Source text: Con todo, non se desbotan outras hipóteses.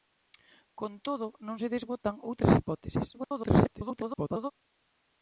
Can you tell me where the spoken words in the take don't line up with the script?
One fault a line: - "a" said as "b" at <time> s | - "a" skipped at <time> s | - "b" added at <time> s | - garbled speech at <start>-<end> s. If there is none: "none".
- garbled speech at 3.1-4.5 s